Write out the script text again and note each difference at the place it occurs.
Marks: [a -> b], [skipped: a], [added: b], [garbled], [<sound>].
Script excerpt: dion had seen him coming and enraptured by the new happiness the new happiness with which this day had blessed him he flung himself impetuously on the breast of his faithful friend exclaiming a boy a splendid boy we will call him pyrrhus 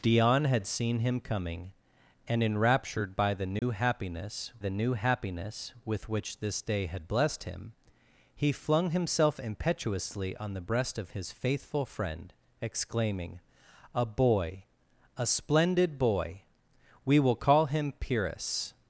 dion had seen him coming and enraptured by the new [dropout] happiness the new happiness with which this day had blessed him he flung himself impetuously on the breast of his faithful friend exclaiming a boy a splendid boy we will call him pyrrhus